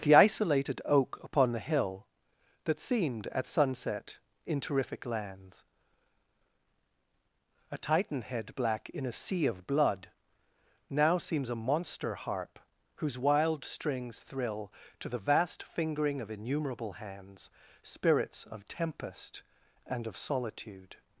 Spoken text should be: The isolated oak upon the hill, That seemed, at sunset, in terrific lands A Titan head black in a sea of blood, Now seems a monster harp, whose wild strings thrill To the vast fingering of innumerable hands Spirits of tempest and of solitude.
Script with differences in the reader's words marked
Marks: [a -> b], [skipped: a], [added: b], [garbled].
The isolated oak upon the hill, That seemed, at sunset, in terrific lands A Titan head black in a sea of blood, Now seems a monster harp, whose wild strings thrill To the vast fingering of innumerable hands Spirits of tempest and of solitude.